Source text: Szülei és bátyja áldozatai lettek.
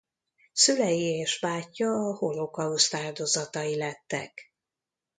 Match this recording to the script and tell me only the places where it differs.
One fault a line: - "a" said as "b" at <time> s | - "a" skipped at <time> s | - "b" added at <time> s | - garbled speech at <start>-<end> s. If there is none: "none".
- "a holokauszt" added at 1.9 s